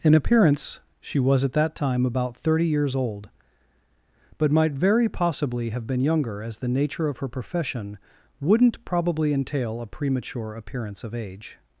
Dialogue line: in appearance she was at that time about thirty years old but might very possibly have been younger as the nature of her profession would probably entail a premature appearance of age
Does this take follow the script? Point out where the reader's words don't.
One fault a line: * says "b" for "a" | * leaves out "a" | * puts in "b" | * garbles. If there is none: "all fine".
* says "wouldn't" for "would"